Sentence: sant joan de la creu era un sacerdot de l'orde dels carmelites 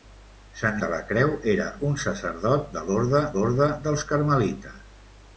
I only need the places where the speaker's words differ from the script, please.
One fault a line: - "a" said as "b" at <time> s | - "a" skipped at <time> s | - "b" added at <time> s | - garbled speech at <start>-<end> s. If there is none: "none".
- "joan" skipped at 0.8 s
- "l'orde" added at 3.4 s